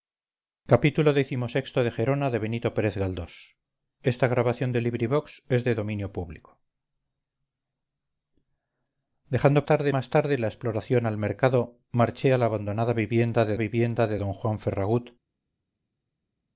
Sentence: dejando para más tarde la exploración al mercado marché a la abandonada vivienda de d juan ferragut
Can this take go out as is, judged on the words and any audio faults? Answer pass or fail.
fail